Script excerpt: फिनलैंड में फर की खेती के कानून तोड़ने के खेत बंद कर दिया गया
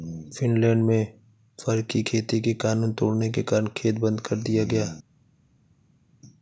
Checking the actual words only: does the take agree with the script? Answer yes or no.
no